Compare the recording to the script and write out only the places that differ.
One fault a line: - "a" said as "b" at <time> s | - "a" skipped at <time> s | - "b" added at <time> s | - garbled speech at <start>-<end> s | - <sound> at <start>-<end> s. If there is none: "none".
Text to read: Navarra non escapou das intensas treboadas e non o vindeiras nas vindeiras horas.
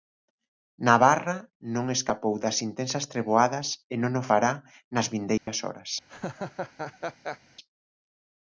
- "vindeiras" said as "fará" at 4.3 s
- dropout at 5.4-5.5 s
- laugh at 6.1-7.4 s